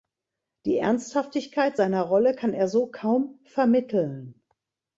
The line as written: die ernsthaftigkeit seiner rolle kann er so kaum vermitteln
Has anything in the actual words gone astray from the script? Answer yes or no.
no